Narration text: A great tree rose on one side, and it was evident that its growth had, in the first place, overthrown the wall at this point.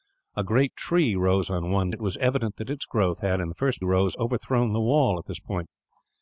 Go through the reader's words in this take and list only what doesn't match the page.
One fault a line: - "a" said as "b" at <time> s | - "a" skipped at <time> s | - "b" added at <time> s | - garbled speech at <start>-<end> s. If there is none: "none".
- "side and" skipped at 1.9 s
- "place" said as "rose" at 3.8 s